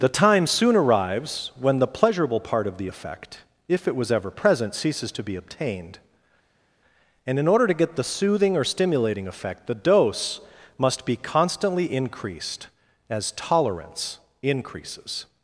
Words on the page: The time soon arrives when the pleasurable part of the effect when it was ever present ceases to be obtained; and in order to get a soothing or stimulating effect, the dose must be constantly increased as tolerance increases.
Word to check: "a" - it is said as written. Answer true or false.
false